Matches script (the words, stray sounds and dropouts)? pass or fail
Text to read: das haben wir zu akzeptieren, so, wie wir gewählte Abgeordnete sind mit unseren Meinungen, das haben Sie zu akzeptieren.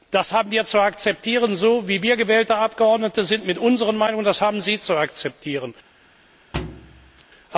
fail